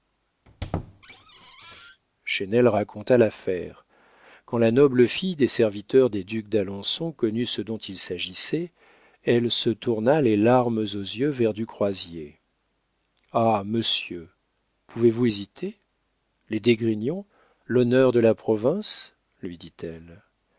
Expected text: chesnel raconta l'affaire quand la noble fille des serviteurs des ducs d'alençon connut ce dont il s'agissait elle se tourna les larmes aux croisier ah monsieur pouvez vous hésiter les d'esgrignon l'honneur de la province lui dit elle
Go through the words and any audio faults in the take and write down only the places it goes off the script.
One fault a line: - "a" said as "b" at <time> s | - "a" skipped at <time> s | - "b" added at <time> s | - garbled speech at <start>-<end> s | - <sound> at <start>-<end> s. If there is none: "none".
- squeak at 0.5-2.0 s
- "yeux vers du" added at 10.8 s